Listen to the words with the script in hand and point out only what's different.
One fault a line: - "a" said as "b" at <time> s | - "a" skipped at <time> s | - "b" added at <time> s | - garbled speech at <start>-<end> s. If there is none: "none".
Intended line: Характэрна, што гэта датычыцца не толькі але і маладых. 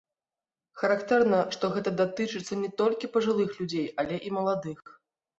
- "пажылых людзей" added at 3.2 s